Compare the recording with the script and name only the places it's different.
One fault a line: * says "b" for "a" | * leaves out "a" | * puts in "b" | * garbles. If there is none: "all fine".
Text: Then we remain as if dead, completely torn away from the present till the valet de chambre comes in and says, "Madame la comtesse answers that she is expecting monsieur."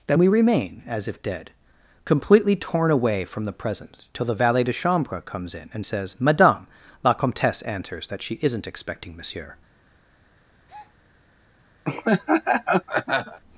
* says "isn't" for "is"